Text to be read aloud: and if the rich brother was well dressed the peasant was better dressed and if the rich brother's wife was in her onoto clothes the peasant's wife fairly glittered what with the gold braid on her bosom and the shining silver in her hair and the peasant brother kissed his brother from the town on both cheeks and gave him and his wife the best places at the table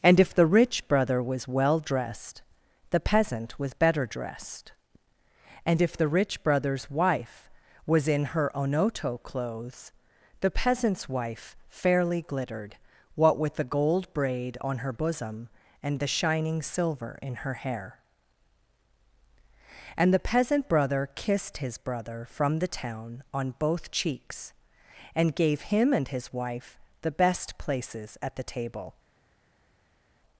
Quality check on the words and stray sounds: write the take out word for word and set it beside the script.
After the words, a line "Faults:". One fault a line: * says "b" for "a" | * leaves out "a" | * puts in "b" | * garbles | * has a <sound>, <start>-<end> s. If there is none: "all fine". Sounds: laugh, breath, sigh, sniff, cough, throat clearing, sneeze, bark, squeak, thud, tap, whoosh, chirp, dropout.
and if the rich brother was well dressed the peasant was better dressed and if the rich brother's wife was in her onoto clothes the peasant's wife fairly glittered what with the gold braid on her bosom and the shining silver in her hair and the peasant brother kissed his brother from the town on both cheeks and gave him and his wife the best places at the table
Faults:
all fine